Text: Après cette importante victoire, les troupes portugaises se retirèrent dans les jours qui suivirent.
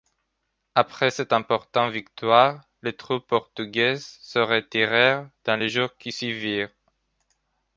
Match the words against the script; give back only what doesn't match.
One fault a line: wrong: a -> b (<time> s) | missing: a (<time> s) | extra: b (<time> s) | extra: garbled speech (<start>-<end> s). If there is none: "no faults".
no faults